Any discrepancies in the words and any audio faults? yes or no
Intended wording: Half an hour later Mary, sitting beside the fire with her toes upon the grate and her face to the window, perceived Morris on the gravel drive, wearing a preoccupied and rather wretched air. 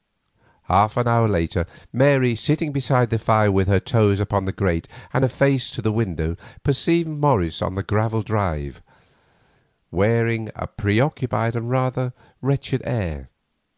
no